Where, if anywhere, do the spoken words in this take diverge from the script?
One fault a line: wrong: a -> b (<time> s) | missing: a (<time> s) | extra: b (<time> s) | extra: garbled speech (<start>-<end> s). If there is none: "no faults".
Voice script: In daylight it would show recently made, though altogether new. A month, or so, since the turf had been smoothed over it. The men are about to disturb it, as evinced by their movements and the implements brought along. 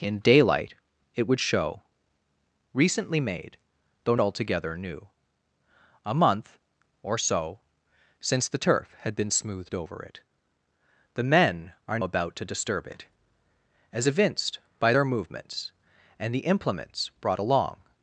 no faults